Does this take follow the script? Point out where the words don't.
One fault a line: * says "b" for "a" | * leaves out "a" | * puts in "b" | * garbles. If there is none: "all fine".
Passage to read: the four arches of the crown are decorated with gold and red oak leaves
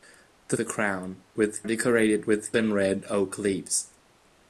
* leaves out "four arches of"
* says "with" for "are"
* leaves out "gold"